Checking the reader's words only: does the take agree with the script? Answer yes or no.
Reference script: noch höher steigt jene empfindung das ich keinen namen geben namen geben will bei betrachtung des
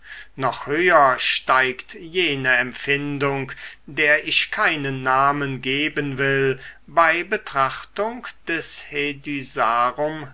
no